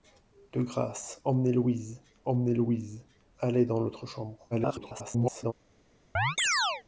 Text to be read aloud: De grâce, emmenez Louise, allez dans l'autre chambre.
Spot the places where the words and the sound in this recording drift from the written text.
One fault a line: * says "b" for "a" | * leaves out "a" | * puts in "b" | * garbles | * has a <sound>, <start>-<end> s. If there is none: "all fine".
* puts in "emmenez Louise"
* garbles
* has a chirp, 6.2-6.8 s